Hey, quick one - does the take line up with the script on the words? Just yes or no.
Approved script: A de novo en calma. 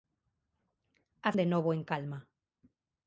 yes